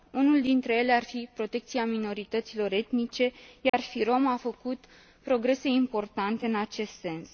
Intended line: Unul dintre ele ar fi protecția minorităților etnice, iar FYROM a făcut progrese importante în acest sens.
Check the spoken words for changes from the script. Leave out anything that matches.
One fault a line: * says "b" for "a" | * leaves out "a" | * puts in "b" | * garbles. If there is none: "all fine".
all fine